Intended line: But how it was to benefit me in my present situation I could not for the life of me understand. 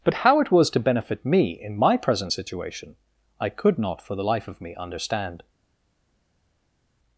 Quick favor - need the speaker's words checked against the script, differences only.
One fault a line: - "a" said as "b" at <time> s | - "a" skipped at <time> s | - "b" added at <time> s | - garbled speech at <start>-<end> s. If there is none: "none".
none